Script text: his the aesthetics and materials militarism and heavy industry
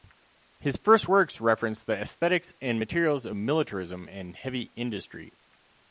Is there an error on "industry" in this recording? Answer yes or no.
no